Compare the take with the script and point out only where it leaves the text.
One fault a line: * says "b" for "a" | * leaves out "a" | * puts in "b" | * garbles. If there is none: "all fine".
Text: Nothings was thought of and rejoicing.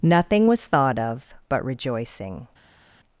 * says "Nothing" for "Nothings"
* says "but" for "and"